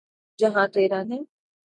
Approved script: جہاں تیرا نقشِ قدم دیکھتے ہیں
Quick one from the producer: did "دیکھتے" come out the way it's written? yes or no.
no